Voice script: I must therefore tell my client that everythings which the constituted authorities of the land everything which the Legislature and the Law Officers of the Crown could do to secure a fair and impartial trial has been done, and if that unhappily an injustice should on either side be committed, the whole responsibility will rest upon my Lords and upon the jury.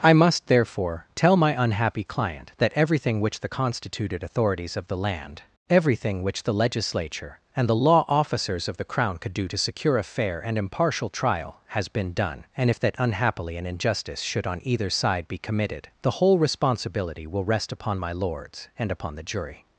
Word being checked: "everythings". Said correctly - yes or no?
no